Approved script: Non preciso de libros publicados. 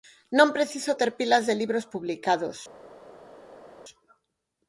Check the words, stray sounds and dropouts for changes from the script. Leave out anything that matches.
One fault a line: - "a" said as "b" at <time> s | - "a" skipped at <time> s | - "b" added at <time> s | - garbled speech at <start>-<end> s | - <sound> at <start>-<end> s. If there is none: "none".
- "ter pilas" added at 1.0 s